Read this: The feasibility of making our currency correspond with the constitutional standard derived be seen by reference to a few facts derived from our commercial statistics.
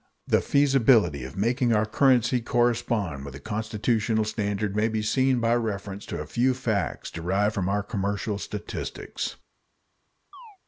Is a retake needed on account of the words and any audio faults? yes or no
yes